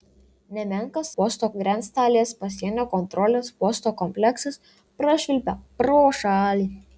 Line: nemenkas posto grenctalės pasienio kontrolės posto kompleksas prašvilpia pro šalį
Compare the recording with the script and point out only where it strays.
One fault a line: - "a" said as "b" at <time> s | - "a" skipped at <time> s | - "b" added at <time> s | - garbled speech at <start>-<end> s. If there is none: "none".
none